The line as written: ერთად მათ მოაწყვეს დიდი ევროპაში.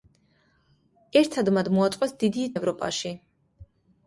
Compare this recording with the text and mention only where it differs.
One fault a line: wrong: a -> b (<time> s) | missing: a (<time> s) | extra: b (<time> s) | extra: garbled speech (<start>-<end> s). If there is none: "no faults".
no faults